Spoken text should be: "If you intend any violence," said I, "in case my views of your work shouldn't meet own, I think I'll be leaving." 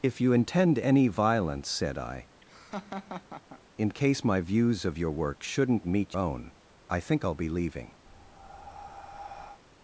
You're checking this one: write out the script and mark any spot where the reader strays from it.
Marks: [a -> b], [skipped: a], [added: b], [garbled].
"If you intend any violence," said I, "in case my views of your work shouldn't meet own, I think I'll be leaving."